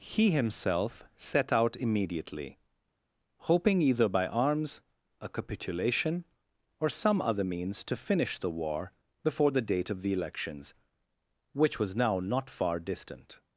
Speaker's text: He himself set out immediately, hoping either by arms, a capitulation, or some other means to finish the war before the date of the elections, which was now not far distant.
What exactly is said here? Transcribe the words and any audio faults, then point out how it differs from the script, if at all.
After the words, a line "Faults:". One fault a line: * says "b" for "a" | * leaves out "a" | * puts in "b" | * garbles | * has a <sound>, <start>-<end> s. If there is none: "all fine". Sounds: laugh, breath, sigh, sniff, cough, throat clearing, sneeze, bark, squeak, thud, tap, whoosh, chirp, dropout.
He himself set out immediately, hoping either by arms, a capitulation, or some other means to finish the war before the date of the elections, which was now not far distant.
Faults:
all fine